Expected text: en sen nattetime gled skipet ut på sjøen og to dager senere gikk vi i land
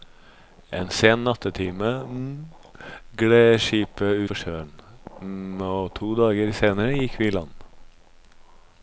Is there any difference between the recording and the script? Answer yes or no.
yes